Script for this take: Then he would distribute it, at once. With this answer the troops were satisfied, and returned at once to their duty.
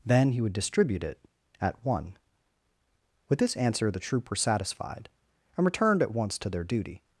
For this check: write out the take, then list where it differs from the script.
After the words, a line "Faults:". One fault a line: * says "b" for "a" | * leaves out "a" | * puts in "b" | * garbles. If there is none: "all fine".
Then he would distribute it, at one. With this answer the troop were satisfied, and returned at once to their duty.
Faults:
* says "one" for "once"
* says "troop" for "troops"